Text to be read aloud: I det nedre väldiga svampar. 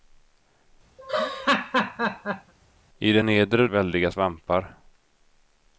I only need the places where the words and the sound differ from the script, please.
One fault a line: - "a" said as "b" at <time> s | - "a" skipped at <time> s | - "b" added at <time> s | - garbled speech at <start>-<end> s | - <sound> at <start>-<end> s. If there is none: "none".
- laugh at 1.0-2.5 s